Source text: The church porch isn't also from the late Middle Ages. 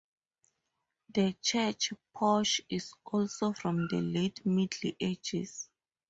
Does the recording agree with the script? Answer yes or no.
no